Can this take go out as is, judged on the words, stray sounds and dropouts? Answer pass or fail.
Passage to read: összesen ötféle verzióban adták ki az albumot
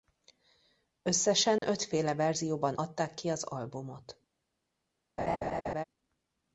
fail